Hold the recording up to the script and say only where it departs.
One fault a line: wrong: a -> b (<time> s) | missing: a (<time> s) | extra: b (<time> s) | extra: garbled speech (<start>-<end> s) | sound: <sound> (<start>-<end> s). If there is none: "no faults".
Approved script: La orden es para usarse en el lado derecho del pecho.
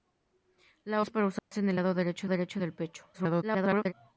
missing: orden (1.0 s)
sound: dropout (1.4-1.5 s)
extra: derecho (2.3 s)
extra: garbled speech (3.1-3.9 s)